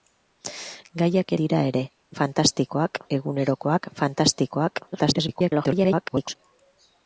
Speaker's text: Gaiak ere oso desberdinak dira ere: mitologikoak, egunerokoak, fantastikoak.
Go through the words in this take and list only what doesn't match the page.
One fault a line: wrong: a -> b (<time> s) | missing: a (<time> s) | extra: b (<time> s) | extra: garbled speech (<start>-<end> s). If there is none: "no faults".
missing: ere oso desberdinak (1.3 s)
wrong: mitologikoak -> fantastikoak (2.2 s)
extra: garbled speech (4.9-6.4 s)